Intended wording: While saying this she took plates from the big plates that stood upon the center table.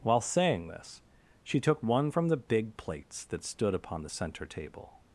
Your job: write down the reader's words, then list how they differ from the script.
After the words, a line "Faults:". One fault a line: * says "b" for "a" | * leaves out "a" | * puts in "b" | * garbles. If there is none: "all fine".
While saying this she took one from the big plates that stood upon the center table.
Faults:
* says "one" for "plates"